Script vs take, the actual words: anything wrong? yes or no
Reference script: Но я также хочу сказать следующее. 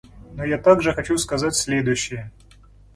no